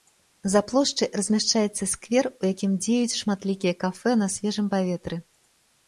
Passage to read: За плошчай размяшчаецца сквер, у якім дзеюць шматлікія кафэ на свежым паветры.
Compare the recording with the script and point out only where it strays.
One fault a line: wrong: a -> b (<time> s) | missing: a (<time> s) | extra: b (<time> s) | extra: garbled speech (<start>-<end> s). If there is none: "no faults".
no faults